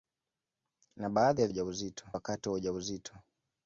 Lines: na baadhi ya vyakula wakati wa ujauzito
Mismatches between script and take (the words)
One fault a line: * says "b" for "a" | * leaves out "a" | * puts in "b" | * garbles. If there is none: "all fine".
* says "ujauzito" for "vyakula"